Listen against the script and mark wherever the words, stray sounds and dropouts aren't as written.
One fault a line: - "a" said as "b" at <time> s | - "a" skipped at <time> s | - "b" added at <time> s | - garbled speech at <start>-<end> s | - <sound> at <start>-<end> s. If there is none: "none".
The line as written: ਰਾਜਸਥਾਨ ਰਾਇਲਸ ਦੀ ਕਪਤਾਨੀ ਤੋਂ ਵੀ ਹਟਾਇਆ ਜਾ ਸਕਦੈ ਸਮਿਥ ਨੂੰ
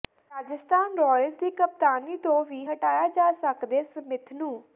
none